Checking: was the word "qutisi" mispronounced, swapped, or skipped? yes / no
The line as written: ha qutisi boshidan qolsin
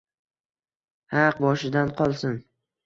yes